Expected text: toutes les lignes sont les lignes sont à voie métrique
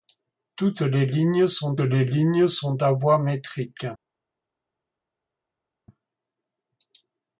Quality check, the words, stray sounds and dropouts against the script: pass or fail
pass